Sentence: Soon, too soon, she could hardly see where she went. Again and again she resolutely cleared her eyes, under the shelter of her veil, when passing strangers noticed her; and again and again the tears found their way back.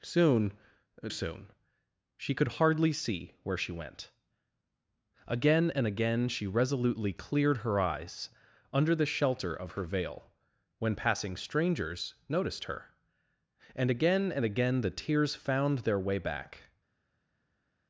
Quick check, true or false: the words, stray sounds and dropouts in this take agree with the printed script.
false